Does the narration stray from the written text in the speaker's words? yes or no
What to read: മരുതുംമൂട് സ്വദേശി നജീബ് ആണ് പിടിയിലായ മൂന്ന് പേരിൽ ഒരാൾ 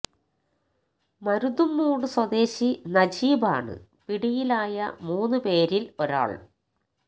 no